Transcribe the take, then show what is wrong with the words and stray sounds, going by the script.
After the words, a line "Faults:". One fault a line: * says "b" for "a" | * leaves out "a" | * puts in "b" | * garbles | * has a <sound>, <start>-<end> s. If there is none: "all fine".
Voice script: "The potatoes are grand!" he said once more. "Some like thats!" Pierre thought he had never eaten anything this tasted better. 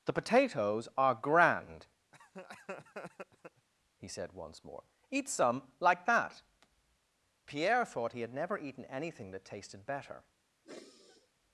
"The potatoes are grand!" he said once more. "Eat some like that!" Pierre thought he had never eaten anything that tasted better.
Faults:
* has a laugh, 2.1-3.7 s
* puts in "Eat"
* says "that" for "thats"
* says "that" for "this"
* has a sigh, 10.6-11.3 s